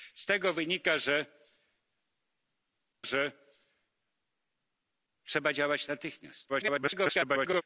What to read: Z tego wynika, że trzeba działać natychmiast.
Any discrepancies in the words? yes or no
yes